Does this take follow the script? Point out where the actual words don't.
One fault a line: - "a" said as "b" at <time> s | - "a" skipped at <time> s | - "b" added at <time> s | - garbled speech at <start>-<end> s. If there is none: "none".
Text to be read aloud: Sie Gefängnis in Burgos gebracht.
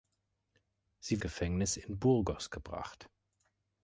none